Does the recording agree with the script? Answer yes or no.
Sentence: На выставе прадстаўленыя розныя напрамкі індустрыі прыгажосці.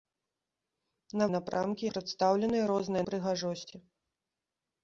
no